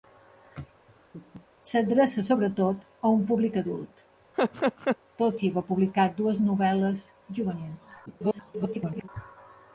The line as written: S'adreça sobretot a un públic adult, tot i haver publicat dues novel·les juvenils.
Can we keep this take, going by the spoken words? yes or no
no